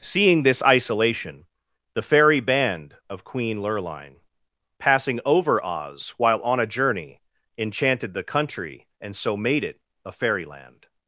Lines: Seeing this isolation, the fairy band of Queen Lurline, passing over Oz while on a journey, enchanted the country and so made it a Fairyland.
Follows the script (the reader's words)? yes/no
yes